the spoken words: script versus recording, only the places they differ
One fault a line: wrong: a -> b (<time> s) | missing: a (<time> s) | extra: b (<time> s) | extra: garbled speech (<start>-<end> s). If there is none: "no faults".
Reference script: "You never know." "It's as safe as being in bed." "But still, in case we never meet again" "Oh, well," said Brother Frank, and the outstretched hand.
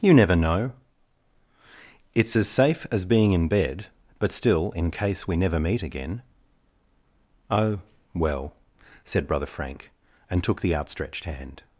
extra: took (10.4 s)